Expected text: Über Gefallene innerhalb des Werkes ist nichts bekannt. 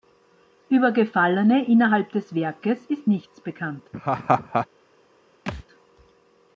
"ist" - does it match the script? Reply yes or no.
yes